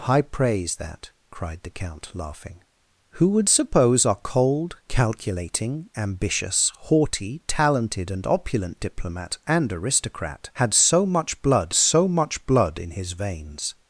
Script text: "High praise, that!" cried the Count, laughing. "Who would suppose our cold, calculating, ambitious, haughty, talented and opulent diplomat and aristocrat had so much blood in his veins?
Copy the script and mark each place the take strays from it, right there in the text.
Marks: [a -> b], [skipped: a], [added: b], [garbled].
"High praise, that!" cried the Count, laughing. "Who would suppose our cold, calculating, ambitious, haughty, talented and opulent diplomat and aristocrat had so much blood [added: so much blood] in his veins?